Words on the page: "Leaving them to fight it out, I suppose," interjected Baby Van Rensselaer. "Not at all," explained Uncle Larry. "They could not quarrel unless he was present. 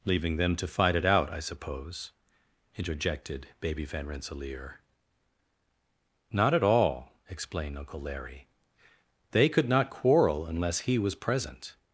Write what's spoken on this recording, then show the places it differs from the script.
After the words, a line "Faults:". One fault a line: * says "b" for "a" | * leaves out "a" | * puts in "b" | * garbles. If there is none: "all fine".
"Leaving them to fight it out, I suppose," interjected Baby Van Rensselaer. "Not at all," explained Uncle Larry. "They could not quarrel unless he was present.
Faults:
all fine